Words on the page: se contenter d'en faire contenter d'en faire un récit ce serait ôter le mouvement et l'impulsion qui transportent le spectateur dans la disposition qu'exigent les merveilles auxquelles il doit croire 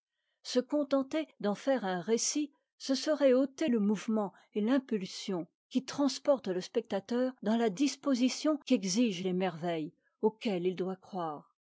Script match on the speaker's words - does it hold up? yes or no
no